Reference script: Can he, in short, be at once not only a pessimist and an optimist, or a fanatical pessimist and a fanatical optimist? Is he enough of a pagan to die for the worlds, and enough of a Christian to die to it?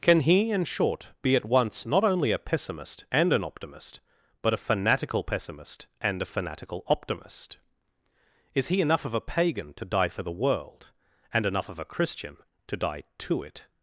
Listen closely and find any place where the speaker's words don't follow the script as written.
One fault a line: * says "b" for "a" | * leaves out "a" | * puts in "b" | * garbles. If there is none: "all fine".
* says "but" for "or"
* says "world" for "worlds"